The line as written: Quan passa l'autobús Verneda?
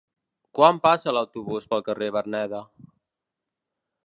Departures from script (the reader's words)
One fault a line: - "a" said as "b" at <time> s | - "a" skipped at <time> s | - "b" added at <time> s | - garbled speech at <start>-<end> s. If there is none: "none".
- "pel carrer" added at 1.7 s